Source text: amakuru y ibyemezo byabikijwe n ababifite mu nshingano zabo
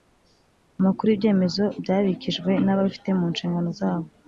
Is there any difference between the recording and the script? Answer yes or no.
no